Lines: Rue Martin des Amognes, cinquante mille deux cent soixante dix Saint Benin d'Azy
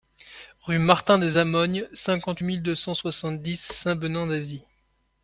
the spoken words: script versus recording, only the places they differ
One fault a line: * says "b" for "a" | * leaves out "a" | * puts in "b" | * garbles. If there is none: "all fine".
all fine